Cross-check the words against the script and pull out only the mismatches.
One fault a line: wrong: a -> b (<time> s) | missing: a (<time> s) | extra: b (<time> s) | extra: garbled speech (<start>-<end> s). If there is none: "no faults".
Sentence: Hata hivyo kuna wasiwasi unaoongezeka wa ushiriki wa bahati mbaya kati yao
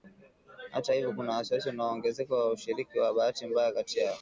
no faults